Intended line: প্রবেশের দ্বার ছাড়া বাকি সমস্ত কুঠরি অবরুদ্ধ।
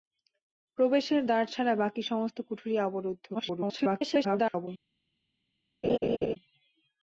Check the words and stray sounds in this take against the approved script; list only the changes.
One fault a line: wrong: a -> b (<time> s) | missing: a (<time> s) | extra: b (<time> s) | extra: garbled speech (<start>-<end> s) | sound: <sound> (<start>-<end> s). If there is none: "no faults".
extra: garbled speech (3.3-4.7 s)
sound: laugh (5.8-6.4 s)